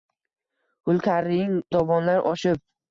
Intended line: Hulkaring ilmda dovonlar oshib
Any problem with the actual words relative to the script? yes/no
yes